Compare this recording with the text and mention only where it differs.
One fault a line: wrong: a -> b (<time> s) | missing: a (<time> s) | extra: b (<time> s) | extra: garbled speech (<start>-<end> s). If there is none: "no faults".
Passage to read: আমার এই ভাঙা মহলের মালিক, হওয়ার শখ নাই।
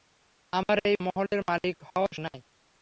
missing: ভাঙা (0.9 s)
missing: শখ (2.1 s)